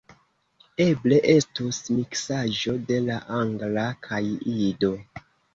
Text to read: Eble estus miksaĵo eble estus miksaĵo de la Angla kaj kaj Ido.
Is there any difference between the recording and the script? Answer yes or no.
yes